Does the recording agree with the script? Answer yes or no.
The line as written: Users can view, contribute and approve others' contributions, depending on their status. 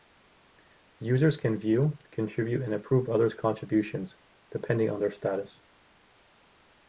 yes